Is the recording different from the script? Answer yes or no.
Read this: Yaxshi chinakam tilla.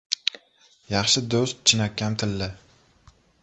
yes